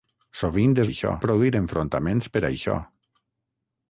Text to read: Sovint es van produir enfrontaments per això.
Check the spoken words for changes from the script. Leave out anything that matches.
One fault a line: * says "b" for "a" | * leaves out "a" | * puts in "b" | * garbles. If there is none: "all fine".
* says "això" for "van"